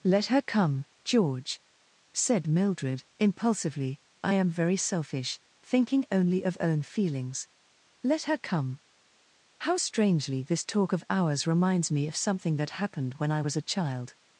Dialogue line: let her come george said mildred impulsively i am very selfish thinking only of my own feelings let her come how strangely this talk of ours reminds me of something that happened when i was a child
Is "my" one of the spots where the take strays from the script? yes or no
yes